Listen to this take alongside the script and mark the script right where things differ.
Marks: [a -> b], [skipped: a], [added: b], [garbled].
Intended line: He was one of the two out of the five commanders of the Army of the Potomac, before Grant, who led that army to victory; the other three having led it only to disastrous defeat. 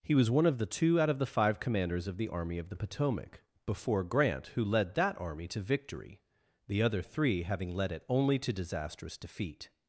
He was one of the two out of the five commanders of the Army of the Potomac, before Grant, who led that army to victory; the other three having led it only to disastrous defeat.